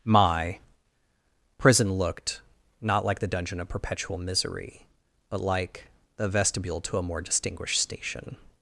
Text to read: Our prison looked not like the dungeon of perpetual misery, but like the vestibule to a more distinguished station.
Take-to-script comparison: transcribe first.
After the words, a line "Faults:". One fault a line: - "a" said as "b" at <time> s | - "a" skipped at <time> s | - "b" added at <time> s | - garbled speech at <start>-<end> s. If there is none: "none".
My prison looked not like the dungeon of perpetual misery, but like the vestibule to a more distinguished station.
Faults:
- "Our" said as "My" at 0.0 s